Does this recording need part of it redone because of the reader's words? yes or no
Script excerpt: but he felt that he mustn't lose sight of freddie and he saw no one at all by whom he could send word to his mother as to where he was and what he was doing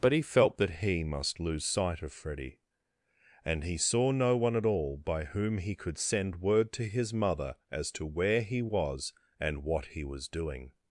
yes